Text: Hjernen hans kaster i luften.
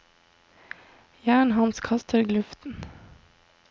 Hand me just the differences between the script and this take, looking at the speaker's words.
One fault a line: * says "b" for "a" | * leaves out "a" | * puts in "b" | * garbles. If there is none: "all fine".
all fine